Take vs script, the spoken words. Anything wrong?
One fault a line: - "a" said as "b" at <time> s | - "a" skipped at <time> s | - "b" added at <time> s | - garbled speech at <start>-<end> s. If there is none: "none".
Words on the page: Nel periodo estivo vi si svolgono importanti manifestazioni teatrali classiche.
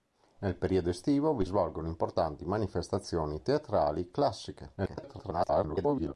- "si" skipped at 1.4 s
- garbled speech at 4.8-6.1 s